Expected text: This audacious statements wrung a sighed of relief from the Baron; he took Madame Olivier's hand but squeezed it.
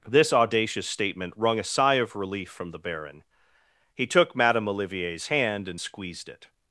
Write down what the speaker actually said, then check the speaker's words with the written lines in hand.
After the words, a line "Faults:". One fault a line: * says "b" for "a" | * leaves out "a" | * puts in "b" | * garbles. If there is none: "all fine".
This audacious statement wrung a sigh of relief from the Baron; he took Madame Olivier's hand and squeezed it.
Faults:
* says "statement" for "statements"
* says "sigh" for "sighed"
* says "and" for "but"